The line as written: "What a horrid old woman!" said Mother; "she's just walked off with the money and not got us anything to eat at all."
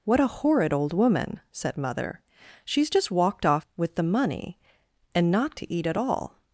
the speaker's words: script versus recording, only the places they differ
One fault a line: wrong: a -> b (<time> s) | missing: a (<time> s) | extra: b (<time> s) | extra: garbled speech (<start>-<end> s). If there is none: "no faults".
missing: got us anything (5.5 s)